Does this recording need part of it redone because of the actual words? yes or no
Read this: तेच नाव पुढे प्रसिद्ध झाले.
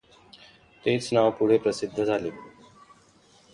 no